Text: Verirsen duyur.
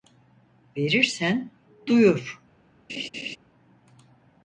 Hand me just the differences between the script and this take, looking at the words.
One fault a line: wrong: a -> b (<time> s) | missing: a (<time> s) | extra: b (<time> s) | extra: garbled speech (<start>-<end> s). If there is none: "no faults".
no faults